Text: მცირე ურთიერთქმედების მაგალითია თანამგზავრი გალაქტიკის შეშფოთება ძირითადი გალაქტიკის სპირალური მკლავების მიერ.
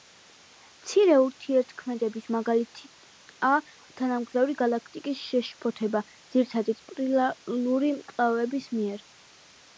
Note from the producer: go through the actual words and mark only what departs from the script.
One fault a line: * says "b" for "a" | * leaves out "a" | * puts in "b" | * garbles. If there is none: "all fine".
* leaves out "გალაქტიკის"